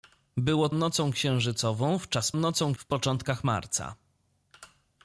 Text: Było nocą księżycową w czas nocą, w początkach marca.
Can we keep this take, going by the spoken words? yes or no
yes